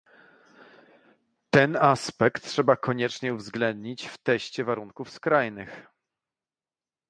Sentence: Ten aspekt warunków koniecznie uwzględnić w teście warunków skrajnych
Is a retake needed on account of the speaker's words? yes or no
yes